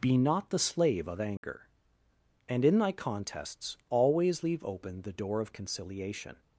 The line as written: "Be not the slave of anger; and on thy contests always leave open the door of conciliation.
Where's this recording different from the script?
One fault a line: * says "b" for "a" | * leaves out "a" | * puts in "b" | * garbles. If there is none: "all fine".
* says "in" for "on"